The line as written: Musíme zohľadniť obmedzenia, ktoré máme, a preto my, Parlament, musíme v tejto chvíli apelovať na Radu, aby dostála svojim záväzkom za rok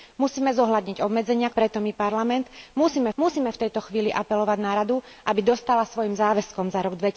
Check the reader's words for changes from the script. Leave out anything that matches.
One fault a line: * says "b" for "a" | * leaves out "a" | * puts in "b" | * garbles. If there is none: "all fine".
* leaves out "ktoré máme a"
* puts in "musíme"